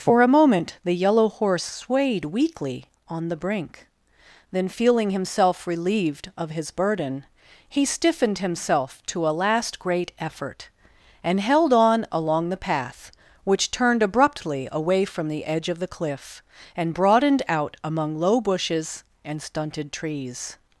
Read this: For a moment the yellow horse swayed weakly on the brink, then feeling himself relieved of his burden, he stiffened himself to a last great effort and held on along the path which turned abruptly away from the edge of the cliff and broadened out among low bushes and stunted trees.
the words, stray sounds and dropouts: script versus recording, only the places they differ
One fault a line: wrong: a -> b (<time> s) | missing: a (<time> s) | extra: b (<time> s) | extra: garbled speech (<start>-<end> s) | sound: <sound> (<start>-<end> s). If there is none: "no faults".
no faults